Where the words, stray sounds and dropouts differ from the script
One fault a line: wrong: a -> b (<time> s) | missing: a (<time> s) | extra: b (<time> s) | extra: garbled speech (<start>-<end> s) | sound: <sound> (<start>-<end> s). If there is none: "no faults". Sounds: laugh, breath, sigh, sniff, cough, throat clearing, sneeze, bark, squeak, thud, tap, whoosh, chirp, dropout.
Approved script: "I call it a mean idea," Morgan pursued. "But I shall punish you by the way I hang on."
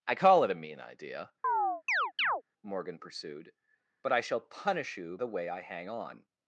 sound: chirp (1.4-2.4 s)
missing: by (5.2 s)